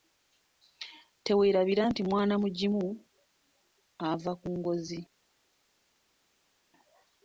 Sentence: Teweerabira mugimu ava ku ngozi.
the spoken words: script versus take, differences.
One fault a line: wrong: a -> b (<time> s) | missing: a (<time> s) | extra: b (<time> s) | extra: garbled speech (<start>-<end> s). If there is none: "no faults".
extra: nti mwana (1.9 s)